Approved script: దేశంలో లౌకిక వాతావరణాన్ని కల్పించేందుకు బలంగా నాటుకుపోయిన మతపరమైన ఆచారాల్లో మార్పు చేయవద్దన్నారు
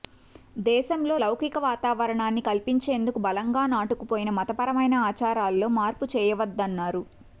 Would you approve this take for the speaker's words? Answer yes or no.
yes